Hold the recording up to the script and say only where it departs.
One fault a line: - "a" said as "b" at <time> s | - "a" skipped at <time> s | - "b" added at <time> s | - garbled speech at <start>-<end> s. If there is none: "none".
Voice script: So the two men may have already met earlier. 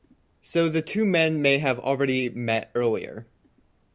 none